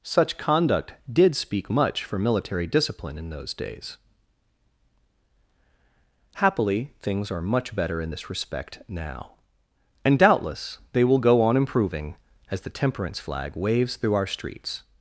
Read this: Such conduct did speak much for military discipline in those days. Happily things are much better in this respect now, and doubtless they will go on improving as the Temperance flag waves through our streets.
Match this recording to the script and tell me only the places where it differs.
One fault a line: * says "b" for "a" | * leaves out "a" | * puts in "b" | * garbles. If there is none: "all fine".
all fine